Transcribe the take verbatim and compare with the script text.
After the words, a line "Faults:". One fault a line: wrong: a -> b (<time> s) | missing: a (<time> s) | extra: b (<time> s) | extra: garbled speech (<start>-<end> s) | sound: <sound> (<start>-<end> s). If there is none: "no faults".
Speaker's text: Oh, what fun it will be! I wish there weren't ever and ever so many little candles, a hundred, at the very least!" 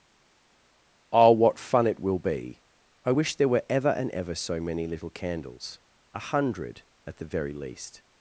Oh, what fun it will be! I wish there were ever and ever so many little candles, a hundred, at the very least!"
Faults:
wrong: weren't -> were (3.5 s)